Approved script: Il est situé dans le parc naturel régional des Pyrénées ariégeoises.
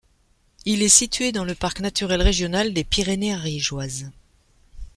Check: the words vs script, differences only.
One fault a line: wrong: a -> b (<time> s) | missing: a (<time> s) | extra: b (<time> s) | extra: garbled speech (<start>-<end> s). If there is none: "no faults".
no faults